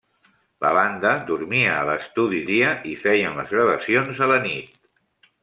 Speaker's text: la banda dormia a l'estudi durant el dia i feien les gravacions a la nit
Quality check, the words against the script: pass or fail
fail